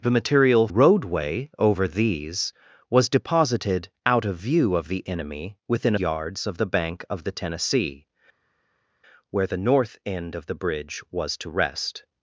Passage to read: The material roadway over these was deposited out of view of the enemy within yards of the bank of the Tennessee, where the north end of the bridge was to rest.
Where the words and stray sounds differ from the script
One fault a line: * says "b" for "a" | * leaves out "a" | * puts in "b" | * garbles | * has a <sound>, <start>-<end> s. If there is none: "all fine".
all fine